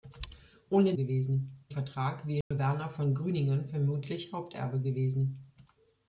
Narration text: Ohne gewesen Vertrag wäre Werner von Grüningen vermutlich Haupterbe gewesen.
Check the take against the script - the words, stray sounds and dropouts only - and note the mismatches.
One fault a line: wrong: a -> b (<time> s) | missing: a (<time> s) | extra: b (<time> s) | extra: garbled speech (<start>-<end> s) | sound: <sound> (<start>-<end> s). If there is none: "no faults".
sound: dropout (2.4-2.5 s)